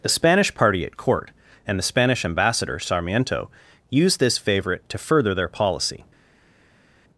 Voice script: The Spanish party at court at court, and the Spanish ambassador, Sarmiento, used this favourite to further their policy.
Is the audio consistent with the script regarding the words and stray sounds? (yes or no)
no